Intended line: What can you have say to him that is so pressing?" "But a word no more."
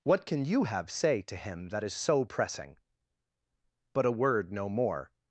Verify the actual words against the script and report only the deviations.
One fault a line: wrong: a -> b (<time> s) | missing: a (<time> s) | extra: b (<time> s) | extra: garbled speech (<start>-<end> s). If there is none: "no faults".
no faults